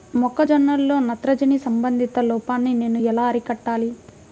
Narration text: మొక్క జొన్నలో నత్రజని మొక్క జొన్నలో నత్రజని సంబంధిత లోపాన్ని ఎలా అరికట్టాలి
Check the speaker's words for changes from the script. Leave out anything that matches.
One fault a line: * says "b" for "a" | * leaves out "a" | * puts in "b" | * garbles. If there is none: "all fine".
* leaves out "మొక్క జొన్నలో నత్రజని"
* puts in "నేను"